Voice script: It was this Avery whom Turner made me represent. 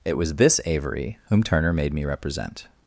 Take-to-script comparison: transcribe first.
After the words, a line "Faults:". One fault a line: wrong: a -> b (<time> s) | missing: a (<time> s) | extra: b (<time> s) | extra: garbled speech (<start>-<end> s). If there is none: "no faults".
It was this Avery whom Turner made me represent.
Faults:
no faults